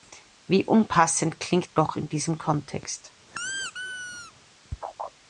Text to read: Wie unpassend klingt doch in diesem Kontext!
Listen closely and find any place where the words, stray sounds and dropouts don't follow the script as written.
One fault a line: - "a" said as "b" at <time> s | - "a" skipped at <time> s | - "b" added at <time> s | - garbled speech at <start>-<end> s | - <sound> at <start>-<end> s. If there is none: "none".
- squeak at 3.3-4.3 s